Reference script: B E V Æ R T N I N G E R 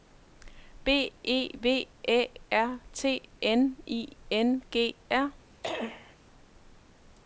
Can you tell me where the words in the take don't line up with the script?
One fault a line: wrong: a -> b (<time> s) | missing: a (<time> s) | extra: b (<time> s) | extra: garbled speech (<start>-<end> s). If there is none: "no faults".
missing: E (5.0 s)